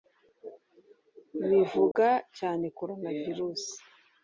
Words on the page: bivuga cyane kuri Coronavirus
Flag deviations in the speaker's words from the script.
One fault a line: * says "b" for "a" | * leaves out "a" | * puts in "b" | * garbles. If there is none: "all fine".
* leaves out "kuri"